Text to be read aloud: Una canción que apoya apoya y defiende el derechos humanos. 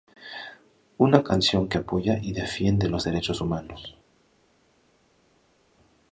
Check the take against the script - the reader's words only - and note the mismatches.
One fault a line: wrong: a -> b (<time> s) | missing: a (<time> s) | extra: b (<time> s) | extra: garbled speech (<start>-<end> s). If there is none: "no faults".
missing: apoya (2.2 s)
wrong: el -> los (2.9 s)